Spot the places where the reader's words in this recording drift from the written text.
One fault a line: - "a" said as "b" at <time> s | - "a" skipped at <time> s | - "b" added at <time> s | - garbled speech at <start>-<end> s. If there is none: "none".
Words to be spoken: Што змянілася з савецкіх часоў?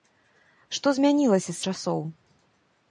- "савецкіх" skipped at 1.6 s